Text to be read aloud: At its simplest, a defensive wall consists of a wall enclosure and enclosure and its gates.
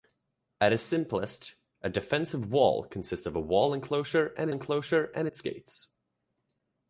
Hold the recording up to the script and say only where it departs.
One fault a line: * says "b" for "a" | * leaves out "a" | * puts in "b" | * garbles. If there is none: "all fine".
all fine